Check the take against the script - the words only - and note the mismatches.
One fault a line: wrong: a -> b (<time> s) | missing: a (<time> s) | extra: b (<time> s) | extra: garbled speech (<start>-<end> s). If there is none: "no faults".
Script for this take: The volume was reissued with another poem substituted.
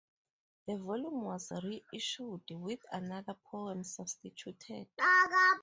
no faults